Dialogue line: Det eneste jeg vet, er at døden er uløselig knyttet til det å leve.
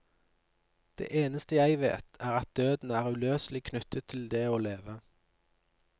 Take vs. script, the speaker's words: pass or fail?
pass